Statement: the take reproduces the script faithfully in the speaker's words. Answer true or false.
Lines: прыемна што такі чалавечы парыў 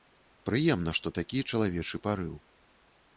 true